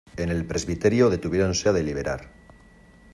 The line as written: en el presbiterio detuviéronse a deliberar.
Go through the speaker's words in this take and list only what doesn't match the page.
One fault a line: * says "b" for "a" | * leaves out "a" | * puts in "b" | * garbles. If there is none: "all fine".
all fine